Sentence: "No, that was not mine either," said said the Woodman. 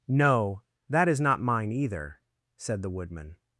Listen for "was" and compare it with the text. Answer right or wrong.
wrong